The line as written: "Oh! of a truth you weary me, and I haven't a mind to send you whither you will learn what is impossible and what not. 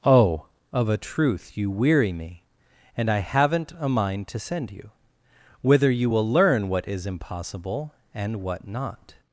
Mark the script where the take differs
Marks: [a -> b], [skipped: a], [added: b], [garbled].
"Oh! of a truth you weary me, and I haven't a mind to send you whither you will learn what is impossible and what not.